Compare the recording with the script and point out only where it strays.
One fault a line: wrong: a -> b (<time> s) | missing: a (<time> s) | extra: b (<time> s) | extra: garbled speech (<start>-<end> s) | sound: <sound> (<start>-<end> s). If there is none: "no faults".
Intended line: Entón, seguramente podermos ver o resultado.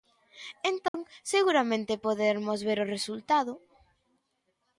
sound: dropout (0.9-0.9 s)